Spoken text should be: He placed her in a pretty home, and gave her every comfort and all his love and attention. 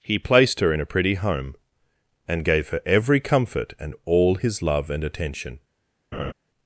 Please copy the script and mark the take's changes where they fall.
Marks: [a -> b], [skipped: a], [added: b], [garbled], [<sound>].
He placed her in a pretty home, and gave her every comfort and all his love and attention. [laugh]